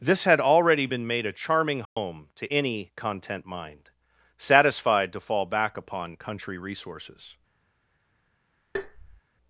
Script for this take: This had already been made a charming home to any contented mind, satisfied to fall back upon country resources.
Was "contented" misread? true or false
true